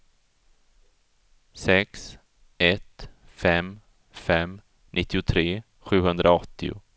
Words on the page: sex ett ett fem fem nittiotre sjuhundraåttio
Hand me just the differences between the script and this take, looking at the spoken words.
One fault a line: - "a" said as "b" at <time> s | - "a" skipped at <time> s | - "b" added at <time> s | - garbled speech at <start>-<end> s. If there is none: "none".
- "ett" skipped at 3.1 s